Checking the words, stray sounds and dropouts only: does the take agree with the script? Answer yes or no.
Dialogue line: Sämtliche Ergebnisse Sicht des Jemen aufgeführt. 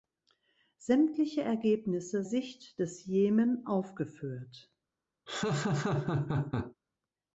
no